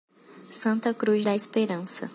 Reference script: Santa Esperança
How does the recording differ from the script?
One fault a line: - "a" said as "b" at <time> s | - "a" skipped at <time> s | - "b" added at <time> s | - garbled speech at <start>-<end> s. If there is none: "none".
- "Cruz da" added at 0.9 s